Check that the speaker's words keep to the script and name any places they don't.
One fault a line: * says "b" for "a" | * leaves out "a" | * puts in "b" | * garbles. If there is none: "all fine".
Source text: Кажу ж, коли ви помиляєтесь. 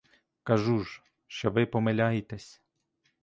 * says "що" for "коли"